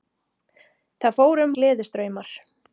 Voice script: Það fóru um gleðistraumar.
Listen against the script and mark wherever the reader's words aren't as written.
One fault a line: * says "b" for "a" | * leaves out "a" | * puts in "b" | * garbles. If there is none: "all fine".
all fine